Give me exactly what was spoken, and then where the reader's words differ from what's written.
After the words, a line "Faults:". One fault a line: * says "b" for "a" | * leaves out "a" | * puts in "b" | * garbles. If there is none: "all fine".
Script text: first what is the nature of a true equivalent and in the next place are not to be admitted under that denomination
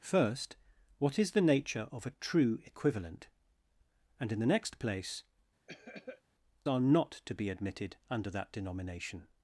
first what is the nature of a true equivalent and in the next place are not to be admitted under that denomination
Faults:
all fine